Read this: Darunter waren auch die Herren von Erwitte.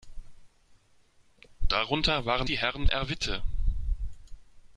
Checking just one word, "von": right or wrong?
wrong